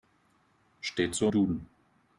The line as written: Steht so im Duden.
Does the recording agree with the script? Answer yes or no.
no